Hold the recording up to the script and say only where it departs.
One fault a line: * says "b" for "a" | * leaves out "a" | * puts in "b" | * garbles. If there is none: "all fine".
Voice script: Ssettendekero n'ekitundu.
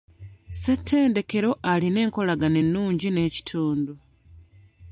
* puts in "alina enkolagana ennungi"